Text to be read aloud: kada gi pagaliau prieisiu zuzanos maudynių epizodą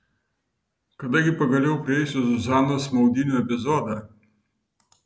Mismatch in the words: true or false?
false